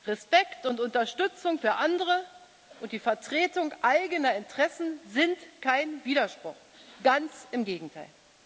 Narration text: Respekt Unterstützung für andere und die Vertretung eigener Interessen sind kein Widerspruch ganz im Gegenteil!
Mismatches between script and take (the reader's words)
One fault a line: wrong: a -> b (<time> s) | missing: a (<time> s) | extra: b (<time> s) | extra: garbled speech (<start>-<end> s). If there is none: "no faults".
extra: und (0.7 s)